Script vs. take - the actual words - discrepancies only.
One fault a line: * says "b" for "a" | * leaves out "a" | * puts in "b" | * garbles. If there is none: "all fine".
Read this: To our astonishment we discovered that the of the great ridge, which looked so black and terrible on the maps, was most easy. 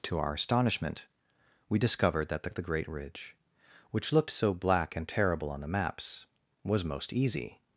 all fine